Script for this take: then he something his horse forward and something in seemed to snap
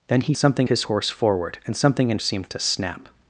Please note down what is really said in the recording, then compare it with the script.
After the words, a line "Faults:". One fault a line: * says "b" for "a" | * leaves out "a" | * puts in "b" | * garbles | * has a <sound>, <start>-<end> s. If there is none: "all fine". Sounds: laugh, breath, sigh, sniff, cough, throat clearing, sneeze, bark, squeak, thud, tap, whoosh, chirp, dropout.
then he something his horse forward and something in seemed to snap
Faults:
all fine